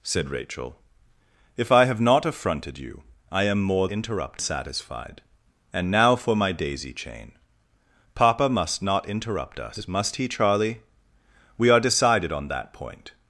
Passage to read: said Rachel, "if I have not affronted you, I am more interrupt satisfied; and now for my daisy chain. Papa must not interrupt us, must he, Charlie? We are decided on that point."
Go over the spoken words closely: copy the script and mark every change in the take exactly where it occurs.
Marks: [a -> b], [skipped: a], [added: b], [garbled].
said Rachel, "if I have not affronted you, I am more interrupt satisfied; and now for my daisy chain. Papa must not interrupt us, must he, Charlie? We are decided on that point."